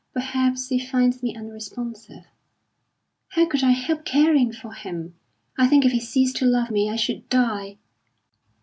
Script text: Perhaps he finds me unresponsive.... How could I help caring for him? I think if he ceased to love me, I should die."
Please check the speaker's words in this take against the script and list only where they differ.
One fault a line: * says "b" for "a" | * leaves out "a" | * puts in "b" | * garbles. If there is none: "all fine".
all fine